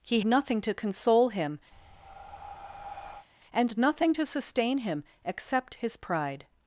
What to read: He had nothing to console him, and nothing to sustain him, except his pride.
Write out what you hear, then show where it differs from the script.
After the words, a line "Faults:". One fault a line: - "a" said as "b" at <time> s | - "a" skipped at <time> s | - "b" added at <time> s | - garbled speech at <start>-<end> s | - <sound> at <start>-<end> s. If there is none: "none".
He nothing to console him, and nothing to sustain him, except his pride.
Faults:
- "had" skipped at 0.2 s
- breath at 1.7-3.3 s